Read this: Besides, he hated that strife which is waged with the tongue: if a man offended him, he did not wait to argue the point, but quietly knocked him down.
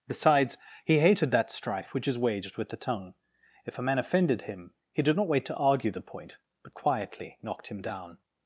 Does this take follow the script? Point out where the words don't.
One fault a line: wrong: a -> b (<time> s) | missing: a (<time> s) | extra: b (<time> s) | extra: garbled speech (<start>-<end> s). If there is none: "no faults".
no faults